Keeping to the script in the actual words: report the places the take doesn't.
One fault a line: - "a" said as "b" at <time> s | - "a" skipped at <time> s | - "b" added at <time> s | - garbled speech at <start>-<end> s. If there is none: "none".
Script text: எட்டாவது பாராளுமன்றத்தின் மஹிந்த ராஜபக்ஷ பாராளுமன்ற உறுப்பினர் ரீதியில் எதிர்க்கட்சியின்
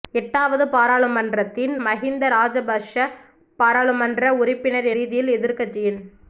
none